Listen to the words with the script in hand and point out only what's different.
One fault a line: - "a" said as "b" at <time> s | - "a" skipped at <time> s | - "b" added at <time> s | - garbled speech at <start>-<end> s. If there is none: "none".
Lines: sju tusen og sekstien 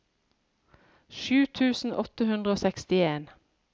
- "åtte hundre" added at 2.0 s